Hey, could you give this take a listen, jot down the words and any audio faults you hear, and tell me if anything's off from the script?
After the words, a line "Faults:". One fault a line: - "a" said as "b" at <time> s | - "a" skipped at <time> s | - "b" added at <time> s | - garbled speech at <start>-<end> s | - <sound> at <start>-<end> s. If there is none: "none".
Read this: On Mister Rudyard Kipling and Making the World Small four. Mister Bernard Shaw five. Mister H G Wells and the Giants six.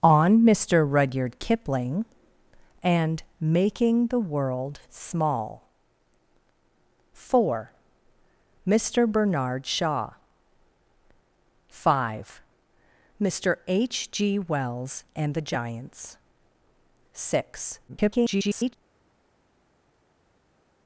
On Mister Rudyard Kipling and Making the World Small four. Mister Bernard Shaw five. Mister H G Wells and the Giants six. [garbled]
Faults:
- garbled speech at 17.9-18.7 s